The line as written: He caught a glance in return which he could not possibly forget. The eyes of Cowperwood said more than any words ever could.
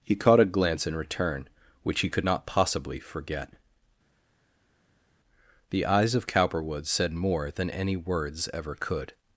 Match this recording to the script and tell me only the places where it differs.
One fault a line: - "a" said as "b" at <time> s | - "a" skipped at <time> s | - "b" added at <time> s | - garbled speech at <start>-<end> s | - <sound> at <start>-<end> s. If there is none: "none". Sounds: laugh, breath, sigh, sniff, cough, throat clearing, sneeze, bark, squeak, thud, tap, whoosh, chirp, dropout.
none